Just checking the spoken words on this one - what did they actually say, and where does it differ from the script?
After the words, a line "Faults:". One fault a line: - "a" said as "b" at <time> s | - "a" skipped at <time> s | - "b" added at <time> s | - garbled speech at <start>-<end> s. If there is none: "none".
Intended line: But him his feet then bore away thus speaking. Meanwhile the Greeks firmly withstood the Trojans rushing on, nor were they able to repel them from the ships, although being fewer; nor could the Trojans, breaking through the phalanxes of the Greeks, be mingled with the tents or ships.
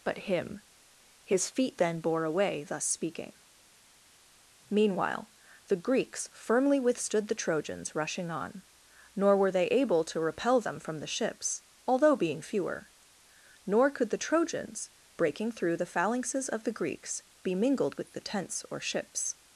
But him his feet then bore away thus speaking. Meanwhile the Greeks firmly withstood the Trojans rushing on, nor were they able to repel them from the ships, although being fewer; nor could the Trojans, breaking through the phalanxes of the Greeks, be mingled with the tents or ships.
Faults:
none